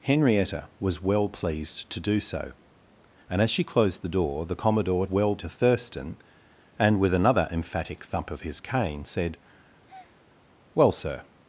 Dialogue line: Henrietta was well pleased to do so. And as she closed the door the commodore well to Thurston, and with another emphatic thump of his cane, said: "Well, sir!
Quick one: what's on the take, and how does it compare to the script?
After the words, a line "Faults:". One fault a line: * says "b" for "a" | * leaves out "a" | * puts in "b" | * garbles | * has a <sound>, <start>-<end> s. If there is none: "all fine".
Henrietta was well pleased to do so. And as she closed the door the commodore well to Thurston, and with another emphatic thump of his cane, said: "Well, sir!
Faults:
* has a breath, 9.9-10.2 s